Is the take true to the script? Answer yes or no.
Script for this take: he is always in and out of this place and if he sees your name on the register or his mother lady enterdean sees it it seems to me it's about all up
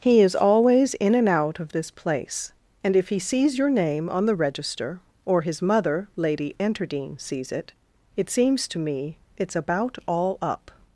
yes